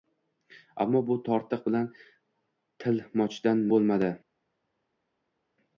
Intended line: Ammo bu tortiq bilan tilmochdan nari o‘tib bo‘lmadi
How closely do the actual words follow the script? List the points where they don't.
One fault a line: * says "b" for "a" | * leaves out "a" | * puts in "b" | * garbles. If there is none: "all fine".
* leaves out "nari o‘tib"